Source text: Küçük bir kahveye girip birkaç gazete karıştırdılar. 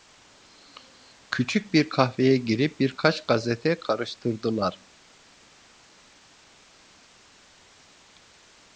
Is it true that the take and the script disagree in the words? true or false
false